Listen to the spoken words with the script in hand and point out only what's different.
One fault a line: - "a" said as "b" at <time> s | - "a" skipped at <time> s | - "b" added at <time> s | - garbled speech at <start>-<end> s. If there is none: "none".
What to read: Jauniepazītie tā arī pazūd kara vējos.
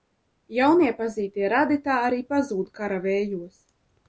- "radi" added at 1.5 s